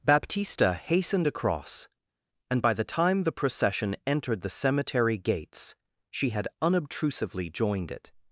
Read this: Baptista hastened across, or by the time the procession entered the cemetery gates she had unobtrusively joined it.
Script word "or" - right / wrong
wrong